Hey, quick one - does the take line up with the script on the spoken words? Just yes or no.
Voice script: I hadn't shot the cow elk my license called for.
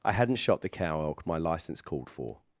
yes